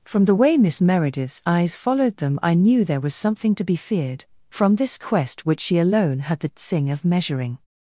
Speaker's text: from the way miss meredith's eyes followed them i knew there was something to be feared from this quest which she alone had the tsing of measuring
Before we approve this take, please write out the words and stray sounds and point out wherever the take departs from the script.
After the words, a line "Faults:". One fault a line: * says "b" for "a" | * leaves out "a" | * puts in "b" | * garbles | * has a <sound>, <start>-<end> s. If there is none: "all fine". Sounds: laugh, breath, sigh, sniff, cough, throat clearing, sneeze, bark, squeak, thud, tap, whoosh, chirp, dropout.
from the way miss meredith's eyes followed them i knew there was something to be feared from this quest which she alone had the tsing of measuring
Faults:
all fine